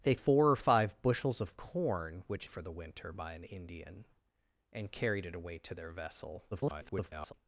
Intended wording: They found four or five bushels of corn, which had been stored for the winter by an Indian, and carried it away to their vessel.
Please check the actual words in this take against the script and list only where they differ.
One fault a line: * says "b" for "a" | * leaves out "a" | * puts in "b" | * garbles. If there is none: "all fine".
* leaves out "found"
* leaves out "had been stored"
* garbles